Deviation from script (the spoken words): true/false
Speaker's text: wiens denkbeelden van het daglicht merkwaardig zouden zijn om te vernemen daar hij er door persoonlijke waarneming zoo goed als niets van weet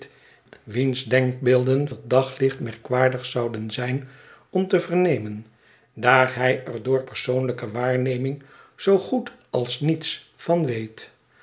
true